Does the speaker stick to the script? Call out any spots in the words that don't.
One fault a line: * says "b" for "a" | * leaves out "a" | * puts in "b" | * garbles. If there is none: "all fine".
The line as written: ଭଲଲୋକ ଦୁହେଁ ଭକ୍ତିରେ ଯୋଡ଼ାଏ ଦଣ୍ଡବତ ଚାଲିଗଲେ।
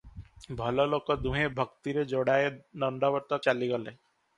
all fine